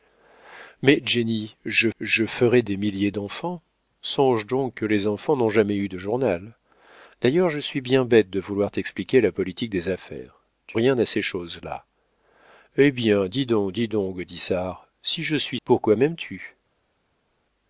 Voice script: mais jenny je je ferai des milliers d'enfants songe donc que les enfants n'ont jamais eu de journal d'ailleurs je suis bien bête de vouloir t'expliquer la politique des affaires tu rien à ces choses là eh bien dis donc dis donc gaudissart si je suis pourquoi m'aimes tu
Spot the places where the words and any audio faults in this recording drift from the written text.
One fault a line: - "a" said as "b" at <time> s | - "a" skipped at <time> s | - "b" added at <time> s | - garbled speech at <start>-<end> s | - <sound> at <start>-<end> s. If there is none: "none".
none